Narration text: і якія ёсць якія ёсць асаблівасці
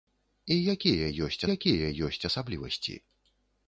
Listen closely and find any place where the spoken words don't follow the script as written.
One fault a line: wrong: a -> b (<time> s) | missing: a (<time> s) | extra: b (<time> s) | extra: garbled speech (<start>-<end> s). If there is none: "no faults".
no faults